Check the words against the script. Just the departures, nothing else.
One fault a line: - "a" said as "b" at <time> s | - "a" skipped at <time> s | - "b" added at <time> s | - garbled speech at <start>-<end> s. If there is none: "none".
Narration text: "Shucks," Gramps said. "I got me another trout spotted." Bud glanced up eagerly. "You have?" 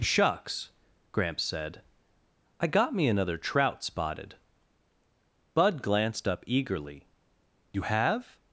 none